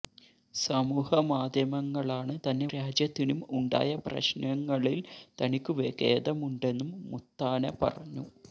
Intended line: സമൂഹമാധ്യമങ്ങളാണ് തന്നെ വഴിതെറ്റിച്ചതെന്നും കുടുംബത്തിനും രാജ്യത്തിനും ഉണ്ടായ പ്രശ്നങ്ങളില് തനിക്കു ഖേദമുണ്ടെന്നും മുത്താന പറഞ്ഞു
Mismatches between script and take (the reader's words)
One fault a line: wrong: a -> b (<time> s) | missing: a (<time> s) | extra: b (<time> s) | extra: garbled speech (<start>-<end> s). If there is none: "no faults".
missing: വഴിതെറ്റിച്ചതെന്നും കുടുംബത്തിനും (2.7 s)